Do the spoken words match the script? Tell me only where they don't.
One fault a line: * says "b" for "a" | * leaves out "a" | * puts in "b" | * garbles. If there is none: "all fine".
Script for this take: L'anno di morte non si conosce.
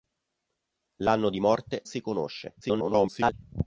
* leaves out "non"
* garbles